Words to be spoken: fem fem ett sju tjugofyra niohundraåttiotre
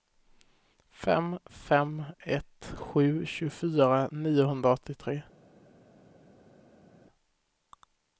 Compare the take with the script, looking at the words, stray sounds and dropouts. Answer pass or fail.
pass